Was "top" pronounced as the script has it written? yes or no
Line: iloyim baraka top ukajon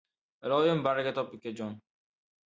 yes